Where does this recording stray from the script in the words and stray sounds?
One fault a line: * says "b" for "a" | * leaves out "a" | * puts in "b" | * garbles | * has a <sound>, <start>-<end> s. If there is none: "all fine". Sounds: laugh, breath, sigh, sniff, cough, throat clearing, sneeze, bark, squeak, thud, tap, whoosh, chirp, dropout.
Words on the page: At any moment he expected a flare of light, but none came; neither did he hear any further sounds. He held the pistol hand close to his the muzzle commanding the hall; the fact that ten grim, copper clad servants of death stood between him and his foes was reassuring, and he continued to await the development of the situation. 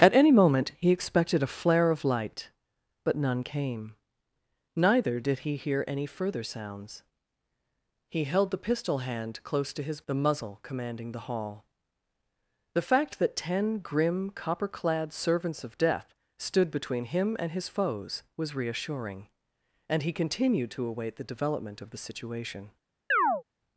* has a chirp, 23.1-23.4 s